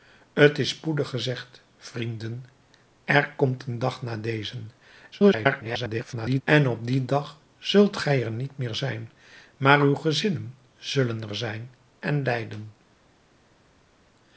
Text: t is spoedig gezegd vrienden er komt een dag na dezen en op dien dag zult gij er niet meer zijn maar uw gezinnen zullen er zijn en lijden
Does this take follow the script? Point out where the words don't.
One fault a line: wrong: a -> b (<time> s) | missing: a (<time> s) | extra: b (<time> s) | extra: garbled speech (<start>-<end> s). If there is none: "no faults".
extra: garbled speech (5.1-6.4 s)